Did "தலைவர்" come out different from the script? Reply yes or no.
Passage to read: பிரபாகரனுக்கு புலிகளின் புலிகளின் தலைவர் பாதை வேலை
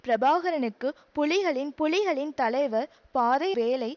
no